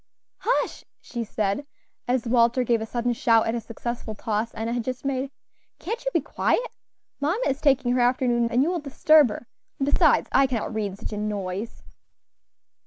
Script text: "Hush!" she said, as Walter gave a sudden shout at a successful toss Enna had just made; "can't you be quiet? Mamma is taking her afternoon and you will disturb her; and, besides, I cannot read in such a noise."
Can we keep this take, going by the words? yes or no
yes